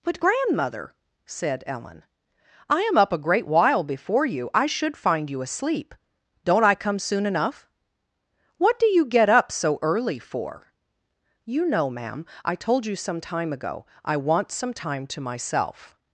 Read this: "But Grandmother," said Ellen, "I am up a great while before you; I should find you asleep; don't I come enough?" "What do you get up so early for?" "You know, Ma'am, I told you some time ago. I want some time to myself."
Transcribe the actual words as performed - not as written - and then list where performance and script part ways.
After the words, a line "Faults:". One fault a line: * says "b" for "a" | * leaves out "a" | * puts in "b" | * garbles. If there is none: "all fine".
"But Grandmother," said Ellen, "I am up a great while before you; I should find you asleep; don't I come soon enough?" "What do you get up so early for?" "You know, Ma'am, I told you some time ago. I want some time to myself."
Faults:
* puts in "soon"